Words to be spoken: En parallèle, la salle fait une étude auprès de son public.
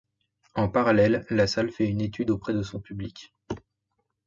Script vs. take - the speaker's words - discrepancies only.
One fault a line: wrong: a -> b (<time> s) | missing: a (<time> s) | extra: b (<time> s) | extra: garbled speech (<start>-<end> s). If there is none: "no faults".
no faults